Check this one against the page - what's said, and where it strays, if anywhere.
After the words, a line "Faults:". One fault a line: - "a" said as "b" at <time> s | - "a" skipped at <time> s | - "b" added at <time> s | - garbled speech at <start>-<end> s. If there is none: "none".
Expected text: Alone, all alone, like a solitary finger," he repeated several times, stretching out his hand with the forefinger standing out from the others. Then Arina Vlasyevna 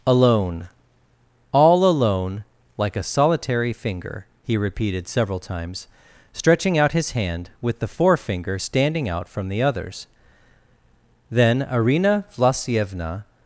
Alone, all alone, like a solitary finger," he repeated several times, stretching out his hand with the forefinger standing out from the others. Then Arina Vlasyevna
Faults:
none